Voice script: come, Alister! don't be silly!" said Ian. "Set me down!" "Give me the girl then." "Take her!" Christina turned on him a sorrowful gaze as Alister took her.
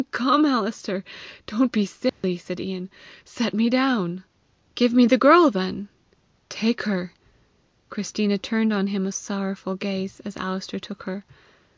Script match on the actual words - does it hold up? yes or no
yes